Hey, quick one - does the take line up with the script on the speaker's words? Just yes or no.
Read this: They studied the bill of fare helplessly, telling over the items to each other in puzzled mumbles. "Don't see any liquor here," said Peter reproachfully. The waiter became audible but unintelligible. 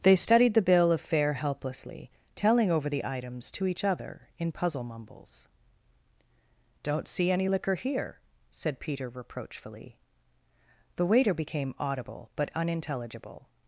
no